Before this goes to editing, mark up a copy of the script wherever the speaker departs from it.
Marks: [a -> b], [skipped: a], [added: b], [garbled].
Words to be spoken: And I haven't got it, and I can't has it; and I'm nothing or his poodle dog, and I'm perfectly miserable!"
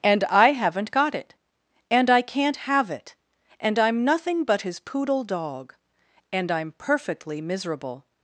And I haven't got it, and I can't [has -> have] it; and I'm nothing [or -> but] his poodle dog, and I'm perfectly miserable!"